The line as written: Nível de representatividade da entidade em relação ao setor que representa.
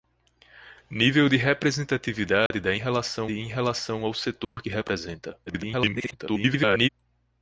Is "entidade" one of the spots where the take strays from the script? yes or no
yes